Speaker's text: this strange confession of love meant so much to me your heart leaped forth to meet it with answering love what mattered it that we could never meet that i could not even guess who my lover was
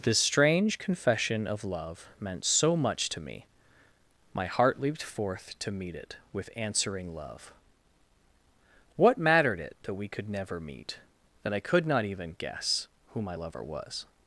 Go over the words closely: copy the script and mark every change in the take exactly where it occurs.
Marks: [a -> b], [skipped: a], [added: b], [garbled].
this strange confession of love meant so much to me [your -> my] heart leaped forth to meet it with answering love what mattered it that we could never meet that i could not even guess who my lover was